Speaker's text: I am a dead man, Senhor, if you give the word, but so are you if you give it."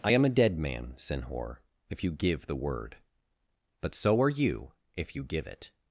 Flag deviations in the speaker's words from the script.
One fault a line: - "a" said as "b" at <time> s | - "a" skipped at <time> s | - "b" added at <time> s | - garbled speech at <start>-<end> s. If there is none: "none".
none